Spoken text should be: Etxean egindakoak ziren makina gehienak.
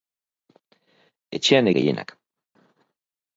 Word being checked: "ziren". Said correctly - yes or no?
no